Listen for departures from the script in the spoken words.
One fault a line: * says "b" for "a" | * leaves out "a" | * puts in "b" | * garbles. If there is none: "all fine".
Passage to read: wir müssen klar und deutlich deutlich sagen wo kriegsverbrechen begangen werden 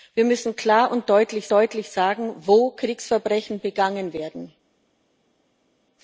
all fine